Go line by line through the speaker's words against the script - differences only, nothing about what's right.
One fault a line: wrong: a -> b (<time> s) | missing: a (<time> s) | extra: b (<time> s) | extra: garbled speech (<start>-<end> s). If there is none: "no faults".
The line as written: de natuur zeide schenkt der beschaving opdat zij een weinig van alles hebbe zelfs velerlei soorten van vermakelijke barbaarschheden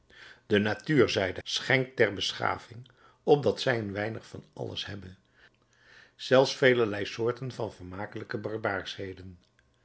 no faults